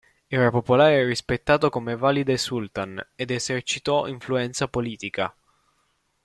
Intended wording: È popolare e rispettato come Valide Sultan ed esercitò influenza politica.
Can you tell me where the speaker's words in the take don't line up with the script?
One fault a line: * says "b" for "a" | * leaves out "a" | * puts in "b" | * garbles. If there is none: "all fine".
* says "Era" for "È"